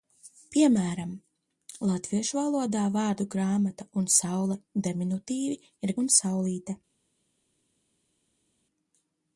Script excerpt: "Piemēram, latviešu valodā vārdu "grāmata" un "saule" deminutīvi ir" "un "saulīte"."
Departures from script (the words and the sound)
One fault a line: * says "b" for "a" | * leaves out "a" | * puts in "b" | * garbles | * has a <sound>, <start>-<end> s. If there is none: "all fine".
all fine